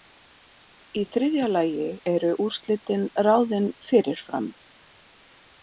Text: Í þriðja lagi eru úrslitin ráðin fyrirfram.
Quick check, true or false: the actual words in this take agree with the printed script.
true